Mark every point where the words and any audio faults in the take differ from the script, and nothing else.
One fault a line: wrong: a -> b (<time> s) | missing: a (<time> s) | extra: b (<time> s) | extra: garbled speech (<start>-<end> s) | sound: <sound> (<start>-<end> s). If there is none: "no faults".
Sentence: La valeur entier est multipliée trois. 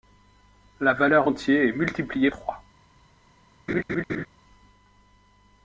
sound: laugh (3.7-4.3 s)